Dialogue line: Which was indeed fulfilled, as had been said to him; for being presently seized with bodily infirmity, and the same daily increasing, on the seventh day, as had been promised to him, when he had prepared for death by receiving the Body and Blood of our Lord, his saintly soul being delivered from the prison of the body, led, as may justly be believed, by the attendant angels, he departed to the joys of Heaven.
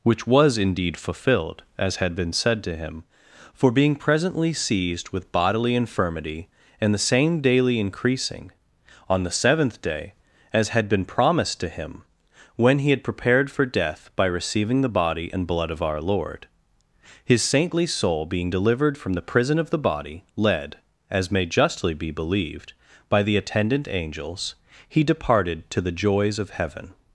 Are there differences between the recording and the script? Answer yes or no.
no